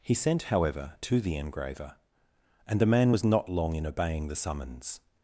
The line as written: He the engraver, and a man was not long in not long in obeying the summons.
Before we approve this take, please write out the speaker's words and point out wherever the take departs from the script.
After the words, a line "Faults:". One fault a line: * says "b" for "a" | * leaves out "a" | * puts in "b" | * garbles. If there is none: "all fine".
He sent, however, to the engraver, and the man was not long in obeying the summons.
Faults:
* puts in "sent however to"
* says "the" for "a"
* leaves out "not long in"